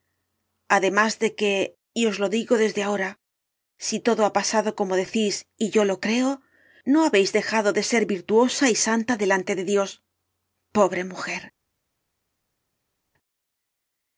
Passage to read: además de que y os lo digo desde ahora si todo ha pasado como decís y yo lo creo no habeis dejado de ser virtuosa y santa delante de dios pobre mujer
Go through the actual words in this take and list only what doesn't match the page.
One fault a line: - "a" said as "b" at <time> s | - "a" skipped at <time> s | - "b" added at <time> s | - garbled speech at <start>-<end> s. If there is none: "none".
none